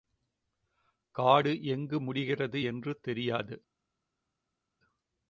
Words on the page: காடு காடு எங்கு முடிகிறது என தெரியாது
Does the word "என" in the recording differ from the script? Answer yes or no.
yes